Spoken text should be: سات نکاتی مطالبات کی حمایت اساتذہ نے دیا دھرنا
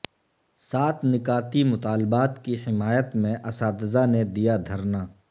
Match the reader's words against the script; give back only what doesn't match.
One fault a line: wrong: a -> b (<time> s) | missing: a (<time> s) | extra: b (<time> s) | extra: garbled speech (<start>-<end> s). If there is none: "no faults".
extra: میں (3.1 s)